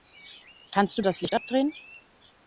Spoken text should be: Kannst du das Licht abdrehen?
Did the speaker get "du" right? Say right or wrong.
right